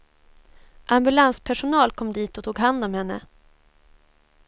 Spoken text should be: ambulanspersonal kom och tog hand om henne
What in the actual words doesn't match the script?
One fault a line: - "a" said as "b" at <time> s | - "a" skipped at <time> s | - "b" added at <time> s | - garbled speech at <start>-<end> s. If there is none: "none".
- "dit" added at 2.1 s